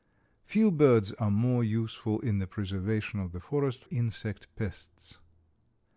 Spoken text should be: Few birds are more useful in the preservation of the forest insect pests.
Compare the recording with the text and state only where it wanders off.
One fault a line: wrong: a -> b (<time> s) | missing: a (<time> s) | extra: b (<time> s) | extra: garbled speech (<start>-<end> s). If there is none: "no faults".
no faults